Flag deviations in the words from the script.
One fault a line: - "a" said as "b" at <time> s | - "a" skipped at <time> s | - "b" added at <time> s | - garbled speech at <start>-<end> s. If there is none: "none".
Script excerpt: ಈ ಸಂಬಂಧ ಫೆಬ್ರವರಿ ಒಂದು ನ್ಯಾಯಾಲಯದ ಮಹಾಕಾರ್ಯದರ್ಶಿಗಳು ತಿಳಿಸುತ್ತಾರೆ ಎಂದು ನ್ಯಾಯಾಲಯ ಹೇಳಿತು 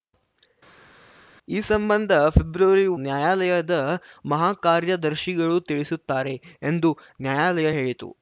- "ಒಂದು" skipped at 2.9 s